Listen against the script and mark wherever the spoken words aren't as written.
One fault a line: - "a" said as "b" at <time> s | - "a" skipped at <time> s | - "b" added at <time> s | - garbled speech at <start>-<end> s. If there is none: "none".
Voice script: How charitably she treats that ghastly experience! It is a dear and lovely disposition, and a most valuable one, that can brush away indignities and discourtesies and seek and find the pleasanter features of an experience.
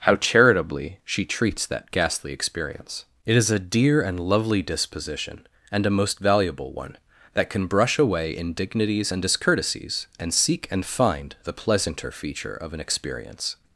- "features" said as "feature" at 12.1 s